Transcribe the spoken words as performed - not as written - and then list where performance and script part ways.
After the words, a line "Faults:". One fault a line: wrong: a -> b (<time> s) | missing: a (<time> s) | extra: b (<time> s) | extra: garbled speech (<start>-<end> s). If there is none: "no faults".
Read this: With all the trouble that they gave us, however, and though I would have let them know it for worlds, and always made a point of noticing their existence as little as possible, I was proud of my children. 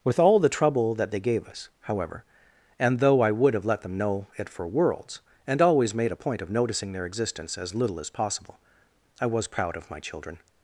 With all the trouble that they gave us, however, and though I would have let them know it for worlds, and always made a point of noticing their existence as little as possible, I was proud of my children.
Faults:
no faults